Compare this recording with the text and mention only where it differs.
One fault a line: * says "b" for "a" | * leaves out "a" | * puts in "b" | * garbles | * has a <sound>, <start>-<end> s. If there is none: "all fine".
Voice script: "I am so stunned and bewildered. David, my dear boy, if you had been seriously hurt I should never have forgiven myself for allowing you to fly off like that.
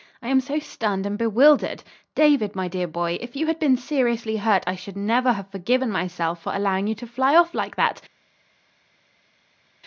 all fine